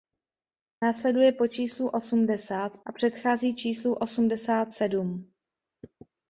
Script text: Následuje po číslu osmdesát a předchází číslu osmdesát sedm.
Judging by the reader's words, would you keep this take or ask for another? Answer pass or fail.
pass